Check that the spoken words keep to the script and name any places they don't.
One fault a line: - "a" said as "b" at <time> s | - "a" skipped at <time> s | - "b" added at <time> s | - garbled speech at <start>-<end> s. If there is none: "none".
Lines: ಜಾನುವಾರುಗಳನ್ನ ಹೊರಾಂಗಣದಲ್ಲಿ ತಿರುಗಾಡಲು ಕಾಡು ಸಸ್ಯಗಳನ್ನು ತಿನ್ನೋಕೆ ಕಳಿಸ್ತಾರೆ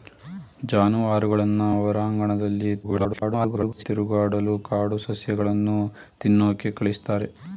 - garbled speech at 2.8-3.8 s